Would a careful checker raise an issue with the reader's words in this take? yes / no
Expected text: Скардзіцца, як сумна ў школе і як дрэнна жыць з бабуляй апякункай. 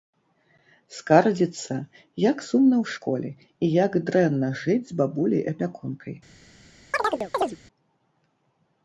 no